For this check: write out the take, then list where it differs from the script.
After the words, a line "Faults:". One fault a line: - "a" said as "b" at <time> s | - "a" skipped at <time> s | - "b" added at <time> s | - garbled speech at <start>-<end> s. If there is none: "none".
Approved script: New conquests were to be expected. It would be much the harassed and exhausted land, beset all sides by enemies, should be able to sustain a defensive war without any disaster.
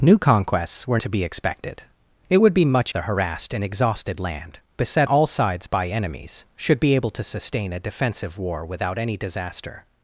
New conquests were to be expected. It would be much the harassed and exhausted land, beset all sides by enemies, should be able to sustain a defensive war without any disaster.
Faults:
none